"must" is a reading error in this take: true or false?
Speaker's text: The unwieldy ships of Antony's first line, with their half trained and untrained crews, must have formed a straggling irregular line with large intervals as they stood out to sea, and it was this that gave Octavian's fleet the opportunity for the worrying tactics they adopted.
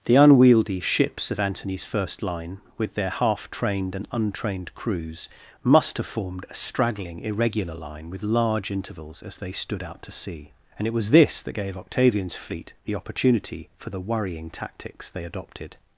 false